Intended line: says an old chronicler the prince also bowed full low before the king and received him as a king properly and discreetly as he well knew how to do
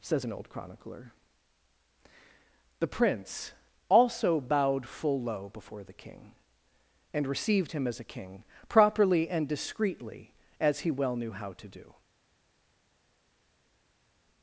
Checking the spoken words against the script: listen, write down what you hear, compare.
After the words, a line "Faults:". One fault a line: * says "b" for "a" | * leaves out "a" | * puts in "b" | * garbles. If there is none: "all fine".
says an old chronicler the prince also bowed full low before the king and received him as a king properly and discreetly as he well knew how to do
Faults:
all fine